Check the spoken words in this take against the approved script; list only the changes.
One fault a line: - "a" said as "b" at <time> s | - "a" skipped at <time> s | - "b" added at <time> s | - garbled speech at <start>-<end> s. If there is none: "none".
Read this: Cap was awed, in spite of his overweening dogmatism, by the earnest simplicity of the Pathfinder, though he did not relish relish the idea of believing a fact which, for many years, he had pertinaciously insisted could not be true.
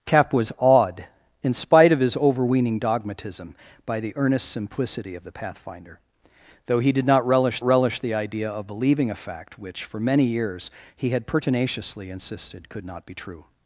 none